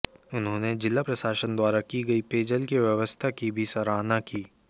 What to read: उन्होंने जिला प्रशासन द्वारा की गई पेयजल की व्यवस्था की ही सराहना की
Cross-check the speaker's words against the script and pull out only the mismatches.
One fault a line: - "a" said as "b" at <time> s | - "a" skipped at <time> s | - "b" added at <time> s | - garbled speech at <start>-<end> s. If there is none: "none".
- "ही" said as "भी" at 3.5 s